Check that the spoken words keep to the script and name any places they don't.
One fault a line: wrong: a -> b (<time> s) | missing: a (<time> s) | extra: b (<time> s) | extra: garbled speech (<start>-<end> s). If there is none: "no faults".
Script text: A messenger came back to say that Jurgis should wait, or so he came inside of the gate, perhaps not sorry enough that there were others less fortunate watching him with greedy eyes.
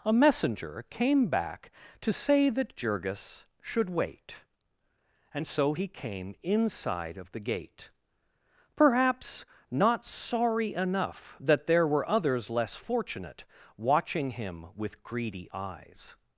wrong: or -> and (5.3 s)